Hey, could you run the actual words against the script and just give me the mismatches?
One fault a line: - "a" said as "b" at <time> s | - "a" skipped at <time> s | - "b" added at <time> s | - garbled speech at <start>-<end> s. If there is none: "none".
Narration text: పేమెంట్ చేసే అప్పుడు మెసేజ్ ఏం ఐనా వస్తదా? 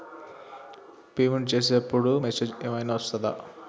none